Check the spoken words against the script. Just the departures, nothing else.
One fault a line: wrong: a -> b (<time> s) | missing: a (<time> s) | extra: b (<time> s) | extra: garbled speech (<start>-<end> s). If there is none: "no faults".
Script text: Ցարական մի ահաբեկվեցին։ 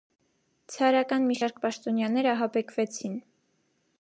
extra: շարք պաշտոնյաներ (1.4 s)